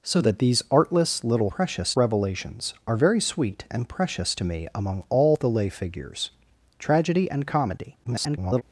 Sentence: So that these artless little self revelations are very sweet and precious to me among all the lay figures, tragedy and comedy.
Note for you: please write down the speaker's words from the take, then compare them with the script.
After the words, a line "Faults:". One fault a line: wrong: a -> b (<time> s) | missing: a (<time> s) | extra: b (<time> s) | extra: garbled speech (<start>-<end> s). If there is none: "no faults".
So that these artless little precious revelations are very sweet and precious to me among all the lay figures, tragedy and comedy. [garbled]
Faults:
wrong: self -> precious (1.5 s)
extra: garbled speech (8.0-8.6 s)